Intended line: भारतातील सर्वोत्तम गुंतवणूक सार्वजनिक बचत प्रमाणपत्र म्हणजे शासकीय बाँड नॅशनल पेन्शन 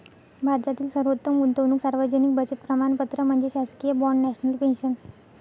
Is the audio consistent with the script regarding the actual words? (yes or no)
yes